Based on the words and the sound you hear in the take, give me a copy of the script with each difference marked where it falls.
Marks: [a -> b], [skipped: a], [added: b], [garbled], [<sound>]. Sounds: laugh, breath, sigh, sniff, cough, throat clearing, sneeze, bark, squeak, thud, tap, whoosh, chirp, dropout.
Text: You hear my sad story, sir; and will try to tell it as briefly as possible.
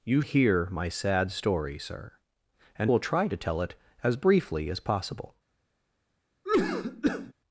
You hear my sad story, sir; and will try to tell it as briefly as possible. [cough]